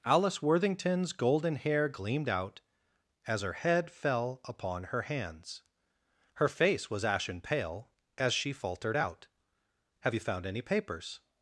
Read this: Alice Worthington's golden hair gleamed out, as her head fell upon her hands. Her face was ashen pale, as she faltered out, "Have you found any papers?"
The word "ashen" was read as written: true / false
true